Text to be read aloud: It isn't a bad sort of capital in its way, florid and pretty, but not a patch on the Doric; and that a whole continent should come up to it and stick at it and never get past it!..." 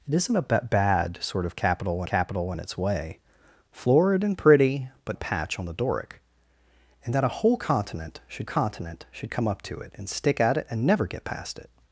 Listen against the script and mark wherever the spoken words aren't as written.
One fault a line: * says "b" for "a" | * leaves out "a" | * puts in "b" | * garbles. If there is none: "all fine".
* puts in "capital"
* leaves out "not"
* puts in "continent should"